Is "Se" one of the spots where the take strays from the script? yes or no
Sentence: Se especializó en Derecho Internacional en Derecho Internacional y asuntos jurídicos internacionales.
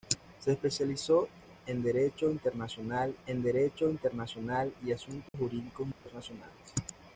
no